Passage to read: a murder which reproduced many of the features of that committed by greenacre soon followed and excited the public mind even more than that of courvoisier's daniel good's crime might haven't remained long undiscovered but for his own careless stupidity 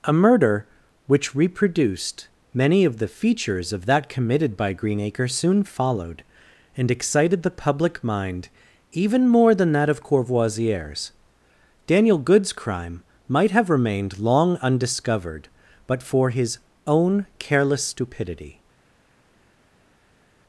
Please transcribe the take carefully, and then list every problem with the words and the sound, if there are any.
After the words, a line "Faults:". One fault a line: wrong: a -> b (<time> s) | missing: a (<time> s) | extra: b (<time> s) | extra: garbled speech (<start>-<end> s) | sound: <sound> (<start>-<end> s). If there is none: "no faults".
a murder which reproduced many of the features of that committed by greenacre soon followed and excited the public mind even more than that of courvoisier's daniel good's crime might have remained long undiscovered but for his own careless stupidity
Faults:
wrong: haven't -> have (13.5 s)